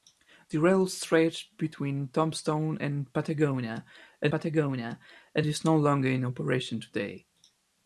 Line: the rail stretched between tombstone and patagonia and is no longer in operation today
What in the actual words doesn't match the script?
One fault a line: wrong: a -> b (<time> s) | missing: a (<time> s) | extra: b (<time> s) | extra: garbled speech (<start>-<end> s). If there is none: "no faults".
extra: patagonia and (4.3 s)